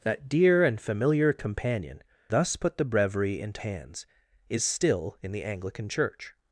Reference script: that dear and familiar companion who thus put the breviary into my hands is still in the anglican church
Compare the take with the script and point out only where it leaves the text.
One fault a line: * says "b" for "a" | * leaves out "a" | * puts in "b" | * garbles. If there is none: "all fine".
* leaves out "who"
* leaves out "my"